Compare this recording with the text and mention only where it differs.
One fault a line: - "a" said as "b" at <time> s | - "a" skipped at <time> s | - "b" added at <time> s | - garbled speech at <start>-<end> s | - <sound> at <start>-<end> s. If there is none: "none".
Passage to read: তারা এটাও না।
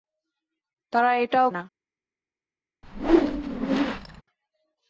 - whoosh at 2.8-4.2 s